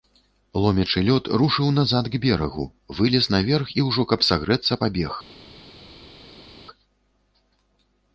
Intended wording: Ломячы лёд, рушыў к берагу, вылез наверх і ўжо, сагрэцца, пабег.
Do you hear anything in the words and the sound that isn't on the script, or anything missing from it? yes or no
yes